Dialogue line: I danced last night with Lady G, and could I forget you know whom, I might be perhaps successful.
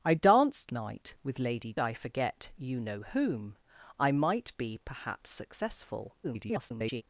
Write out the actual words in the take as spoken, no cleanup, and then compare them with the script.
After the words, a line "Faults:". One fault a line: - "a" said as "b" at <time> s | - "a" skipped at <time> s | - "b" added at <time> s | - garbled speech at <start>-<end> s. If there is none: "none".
I danced night with Lady I forget you know whom, I might be perhaps successful. [garbled]
Faults:
- "last" skipped at 0.7 s
- "G and could" skipped at 1.7 s
- garbled speech at 6.2-7.0 s